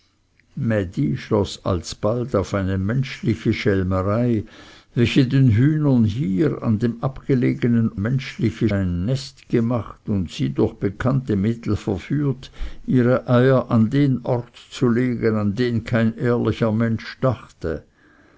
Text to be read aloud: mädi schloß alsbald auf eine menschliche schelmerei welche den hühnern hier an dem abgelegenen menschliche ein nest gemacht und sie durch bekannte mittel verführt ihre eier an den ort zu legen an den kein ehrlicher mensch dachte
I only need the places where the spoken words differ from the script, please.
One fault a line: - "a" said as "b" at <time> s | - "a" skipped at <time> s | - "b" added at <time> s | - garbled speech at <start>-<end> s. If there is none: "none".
none